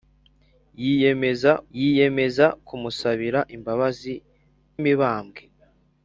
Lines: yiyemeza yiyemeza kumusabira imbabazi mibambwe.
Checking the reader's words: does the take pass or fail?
pass